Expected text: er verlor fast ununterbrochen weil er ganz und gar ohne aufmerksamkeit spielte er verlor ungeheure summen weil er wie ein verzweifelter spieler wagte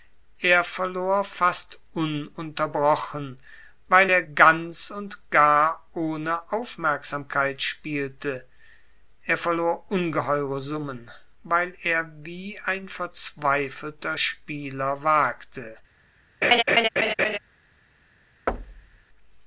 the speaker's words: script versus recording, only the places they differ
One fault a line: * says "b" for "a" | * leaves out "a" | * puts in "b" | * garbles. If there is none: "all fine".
all fine